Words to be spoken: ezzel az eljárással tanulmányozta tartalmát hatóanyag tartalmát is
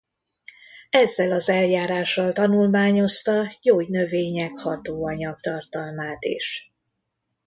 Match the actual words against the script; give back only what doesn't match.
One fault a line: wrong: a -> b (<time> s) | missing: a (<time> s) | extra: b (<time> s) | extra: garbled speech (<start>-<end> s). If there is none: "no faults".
wrong: tartalmát -> gyógynövények (3.6 s)